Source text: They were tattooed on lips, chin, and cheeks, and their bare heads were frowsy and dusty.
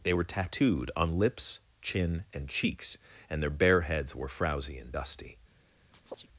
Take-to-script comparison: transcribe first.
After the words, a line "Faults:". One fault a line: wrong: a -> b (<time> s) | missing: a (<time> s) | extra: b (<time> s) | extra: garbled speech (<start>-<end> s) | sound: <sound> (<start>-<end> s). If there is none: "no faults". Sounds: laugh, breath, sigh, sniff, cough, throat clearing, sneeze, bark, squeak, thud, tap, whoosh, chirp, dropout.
They were tattooed on lips, chin, and cheeks, and their bare heads were frowsy and dusty.
Faults:
sound: chirp (5.9-6.3 s)